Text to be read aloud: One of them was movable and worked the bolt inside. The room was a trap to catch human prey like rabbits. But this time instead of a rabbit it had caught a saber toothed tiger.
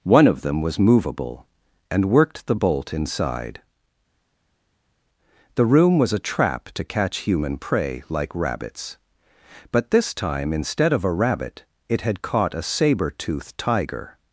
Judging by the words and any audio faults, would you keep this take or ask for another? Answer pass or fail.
pass